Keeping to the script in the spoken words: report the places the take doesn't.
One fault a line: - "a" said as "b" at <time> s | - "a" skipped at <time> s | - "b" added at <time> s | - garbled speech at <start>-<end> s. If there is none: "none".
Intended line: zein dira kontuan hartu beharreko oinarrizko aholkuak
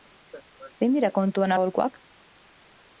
- "hartu beharreko oinarrizko" skipped at 1.5 s